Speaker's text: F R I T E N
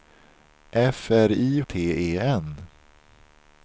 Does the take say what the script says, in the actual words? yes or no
yes